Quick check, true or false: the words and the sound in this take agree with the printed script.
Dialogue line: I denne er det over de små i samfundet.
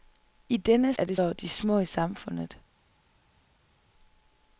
true